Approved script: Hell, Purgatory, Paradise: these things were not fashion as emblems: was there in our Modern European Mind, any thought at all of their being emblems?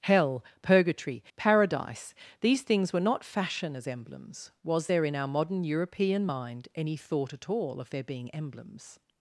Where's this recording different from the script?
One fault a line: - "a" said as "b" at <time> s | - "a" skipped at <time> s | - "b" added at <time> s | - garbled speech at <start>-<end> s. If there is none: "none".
none